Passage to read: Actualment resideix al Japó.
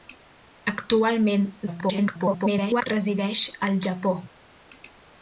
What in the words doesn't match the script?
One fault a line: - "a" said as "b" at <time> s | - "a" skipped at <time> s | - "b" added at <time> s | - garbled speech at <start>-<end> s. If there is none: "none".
- garbled speech at 1.7-2.9 s